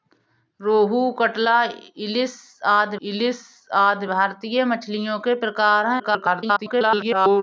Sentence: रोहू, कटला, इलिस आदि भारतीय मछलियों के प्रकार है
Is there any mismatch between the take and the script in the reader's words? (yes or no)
yes